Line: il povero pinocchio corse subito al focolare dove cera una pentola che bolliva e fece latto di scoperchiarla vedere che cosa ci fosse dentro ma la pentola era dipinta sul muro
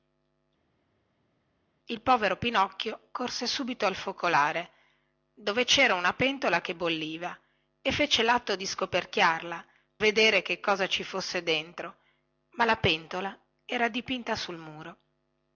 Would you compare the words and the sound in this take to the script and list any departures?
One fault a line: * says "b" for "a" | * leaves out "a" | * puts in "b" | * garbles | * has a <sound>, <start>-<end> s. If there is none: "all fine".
all fine